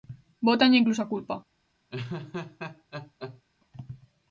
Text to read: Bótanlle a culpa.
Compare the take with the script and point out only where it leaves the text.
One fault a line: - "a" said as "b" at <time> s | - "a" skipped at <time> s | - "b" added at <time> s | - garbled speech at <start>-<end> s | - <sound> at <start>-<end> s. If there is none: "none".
- "incluso" added at 0.8 s
- laugh at 1.9-3.4 s